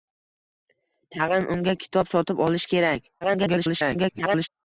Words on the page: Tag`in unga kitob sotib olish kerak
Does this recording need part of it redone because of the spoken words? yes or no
yes